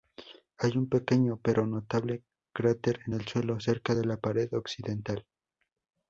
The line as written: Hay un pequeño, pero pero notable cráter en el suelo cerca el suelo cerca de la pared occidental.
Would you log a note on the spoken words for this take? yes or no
yes